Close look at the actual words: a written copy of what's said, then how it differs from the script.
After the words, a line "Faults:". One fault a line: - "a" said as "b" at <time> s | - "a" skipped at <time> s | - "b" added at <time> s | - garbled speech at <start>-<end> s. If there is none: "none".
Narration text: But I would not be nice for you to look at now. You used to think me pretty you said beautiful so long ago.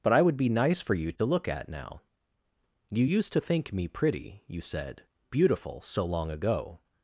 But I would be nice for you to look at now. You used to think me pretty you said beautiful so long ago.
Faults:
- "not" skipped at 0.4 s